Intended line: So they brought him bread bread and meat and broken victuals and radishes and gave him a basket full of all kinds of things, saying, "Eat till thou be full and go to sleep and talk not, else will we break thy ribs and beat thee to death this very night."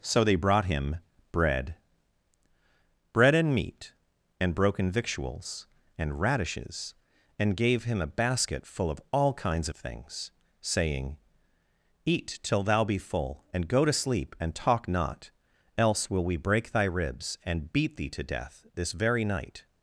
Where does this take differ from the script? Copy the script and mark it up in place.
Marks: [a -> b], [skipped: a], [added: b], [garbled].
So they brought him bread bread and meat and broken victuals and radishes and gave him a basket full of all kinds of things, saying, "Eat till thou be full and go to sleep and talk not, else will we break thy ribs and beat thee to death this very night."